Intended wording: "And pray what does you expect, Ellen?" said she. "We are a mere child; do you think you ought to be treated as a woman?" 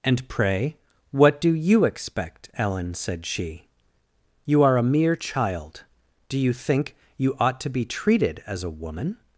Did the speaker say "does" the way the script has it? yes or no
no